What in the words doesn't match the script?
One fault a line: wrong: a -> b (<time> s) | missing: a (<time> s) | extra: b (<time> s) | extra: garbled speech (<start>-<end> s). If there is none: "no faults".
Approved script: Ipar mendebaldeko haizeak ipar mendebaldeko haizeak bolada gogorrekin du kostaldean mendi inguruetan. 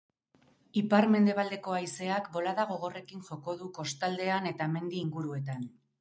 missing: ipar mendebaldeko haizeak (2.3 s)
extra: joko (3.3 s)
extra: eta (4.5 s)